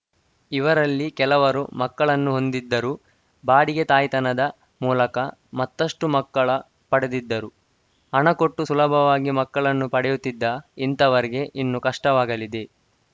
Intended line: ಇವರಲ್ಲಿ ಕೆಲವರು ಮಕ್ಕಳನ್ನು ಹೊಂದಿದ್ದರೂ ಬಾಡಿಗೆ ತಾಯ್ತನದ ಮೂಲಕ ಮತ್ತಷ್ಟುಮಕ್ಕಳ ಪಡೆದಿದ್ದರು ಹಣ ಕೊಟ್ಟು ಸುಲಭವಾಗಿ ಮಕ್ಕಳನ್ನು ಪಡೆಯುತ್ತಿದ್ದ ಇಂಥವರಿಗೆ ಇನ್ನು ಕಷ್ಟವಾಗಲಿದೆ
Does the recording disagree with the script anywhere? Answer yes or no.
no